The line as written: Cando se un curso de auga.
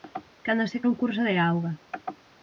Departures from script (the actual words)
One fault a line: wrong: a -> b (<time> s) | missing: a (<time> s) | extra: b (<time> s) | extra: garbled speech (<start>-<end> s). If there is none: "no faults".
no faults